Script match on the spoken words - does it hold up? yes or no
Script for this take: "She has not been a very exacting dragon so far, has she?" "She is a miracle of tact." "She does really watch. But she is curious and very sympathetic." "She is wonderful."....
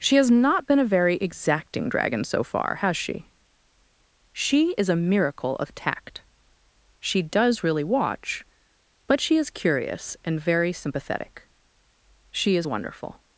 yes